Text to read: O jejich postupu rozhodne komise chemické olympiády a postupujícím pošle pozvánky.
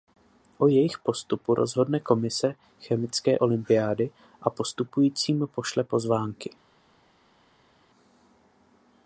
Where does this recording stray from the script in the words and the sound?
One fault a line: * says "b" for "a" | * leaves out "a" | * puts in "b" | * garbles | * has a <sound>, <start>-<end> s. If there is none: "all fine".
all fine